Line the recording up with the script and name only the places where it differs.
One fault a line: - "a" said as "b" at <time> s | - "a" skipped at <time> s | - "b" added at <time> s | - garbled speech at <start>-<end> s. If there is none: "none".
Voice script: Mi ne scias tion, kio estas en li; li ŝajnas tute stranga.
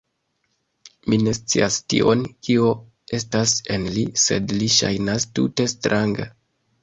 - "sed" added at 4.2 s